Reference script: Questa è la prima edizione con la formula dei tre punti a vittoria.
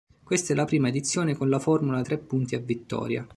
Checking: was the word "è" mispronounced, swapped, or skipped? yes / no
no